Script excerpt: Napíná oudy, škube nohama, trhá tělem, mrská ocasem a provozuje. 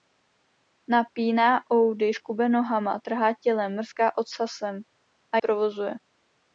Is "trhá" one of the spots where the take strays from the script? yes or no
no